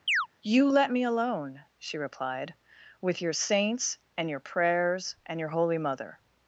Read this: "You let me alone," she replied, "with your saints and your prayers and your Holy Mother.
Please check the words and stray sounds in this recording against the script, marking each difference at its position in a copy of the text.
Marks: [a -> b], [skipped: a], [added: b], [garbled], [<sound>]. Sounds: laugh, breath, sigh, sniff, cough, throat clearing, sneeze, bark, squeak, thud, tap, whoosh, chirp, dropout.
[chirp] "You let me alone," she replied, "with your saints and your prayers and your Holy Mother.